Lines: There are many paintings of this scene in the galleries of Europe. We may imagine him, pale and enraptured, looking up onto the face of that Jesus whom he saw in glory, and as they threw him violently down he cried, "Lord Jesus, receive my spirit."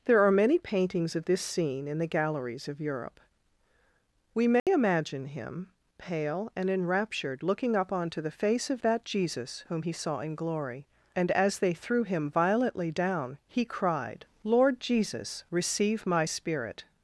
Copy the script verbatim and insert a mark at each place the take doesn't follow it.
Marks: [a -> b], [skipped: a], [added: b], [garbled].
There are many paintings of this scene in the galleries of Europe. We may imagine him, pale and enraptured, looking up onto the face of that Jesus whom he saw in glory, and as they threw him violently down he cried, "Lord Jesus, receive my spirit."